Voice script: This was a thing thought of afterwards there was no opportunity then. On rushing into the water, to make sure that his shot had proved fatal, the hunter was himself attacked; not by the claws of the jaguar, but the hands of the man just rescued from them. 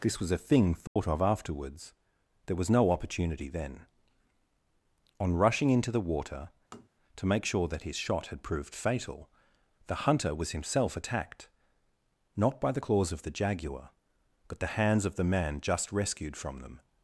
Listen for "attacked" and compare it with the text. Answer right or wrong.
right